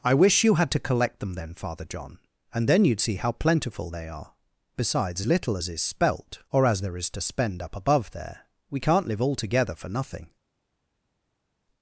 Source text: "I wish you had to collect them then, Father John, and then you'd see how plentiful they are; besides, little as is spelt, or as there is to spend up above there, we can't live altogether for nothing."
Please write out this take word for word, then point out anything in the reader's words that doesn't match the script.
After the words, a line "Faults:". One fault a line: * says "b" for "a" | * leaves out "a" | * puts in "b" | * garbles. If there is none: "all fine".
"I wish you had to collect them then, Father John, and then you'd see how plentiful they are; besides, little as is spelt, or as there is to spend up above there, we can't live altogether for nothing."
Faults:
all fine